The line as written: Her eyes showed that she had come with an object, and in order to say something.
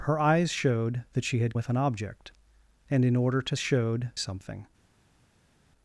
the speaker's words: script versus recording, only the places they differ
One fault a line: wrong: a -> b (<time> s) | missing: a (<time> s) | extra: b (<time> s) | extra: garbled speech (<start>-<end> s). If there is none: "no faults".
missing: come (1.6 s)
wrong: say -> showed (3.6 s)